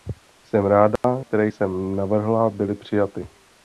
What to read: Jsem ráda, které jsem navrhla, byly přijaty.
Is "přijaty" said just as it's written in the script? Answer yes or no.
yes